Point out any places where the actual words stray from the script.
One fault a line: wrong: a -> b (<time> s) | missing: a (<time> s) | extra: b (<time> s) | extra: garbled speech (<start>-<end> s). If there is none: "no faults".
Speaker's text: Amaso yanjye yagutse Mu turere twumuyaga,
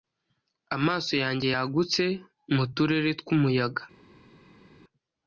no faults